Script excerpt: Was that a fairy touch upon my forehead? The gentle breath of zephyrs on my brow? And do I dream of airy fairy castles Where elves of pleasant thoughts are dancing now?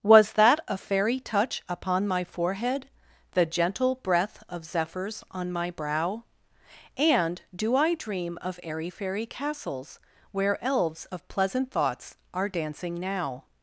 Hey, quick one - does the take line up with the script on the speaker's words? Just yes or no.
yes